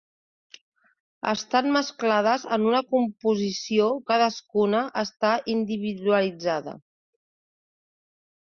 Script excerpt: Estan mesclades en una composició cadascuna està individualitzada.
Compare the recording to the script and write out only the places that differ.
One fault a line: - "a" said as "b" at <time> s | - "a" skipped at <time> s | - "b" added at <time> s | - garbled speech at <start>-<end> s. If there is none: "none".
none